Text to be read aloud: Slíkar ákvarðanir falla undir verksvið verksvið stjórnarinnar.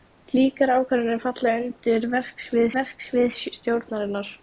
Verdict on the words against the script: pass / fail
pass